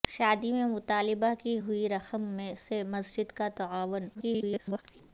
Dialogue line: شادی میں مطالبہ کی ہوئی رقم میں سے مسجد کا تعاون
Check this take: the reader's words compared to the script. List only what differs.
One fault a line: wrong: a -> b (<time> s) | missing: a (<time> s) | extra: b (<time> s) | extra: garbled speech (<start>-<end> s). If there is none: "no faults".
extra: garbled speech (4.1-4.8 s)